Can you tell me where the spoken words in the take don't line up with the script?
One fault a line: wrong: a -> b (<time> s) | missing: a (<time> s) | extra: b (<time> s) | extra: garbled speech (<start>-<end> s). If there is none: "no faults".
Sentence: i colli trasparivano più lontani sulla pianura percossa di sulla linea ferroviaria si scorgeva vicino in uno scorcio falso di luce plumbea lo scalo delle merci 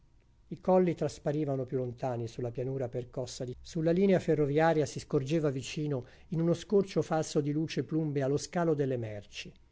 no faults